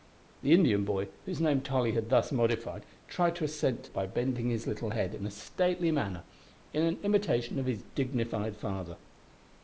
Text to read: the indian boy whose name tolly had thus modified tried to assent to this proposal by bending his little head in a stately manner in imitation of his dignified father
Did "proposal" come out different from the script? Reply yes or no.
yes